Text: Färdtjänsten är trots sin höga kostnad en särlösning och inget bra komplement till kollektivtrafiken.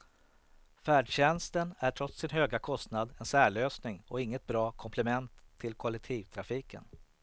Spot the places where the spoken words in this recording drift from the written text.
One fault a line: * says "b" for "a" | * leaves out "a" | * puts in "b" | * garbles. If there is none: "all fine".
all fine